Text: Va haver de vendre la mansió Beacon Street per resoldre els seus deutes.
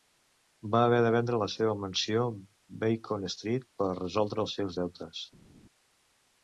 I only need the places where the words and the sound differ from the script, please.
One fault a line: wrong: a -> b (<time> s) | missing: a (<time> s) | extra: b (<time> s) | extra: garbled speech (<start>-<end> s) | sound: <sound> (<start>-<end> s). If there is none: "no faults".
extra: seva (1.6 s)